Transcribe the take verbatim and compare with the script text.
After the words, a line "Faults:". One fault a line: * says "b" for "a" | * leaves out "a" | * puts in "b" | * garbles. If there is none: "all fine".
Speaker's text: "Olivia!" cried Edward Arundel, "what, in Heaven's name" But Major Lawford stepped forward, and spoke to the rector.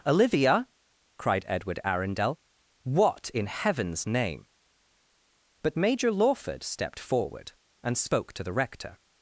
"Olivia!" cried Edward Arundel, "what, in Heaven's name" But Major Lawford stepped forward, and spoke to the rector.
Faults:
all fine